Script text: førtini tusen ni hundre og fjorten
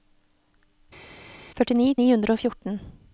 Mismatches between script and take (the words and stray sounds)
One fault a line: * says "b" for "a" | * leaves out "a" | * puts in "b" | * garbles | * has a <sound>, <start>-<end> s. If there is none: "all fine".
* leaves out "tusen"